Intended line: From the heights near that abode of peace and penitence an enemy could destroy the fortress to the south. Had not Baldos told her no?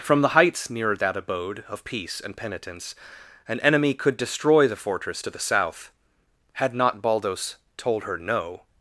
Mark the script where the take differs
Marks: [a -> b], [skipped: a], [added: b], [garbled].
From the heights near that abode of peace and penitence an enemy could destroy the fortress to the south. Had not Baldos told her no?